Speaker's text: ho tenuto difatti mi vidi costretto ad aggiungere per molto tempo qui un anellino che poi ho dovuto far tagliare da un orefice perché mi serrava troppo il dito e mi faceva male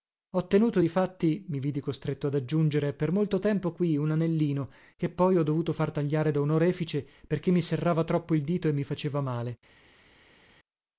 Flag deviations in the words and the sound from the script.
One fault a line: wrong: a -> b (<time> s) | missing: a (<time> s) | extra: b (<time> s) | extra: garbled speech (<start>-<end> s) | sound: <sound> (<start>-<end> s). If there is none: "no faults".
no faults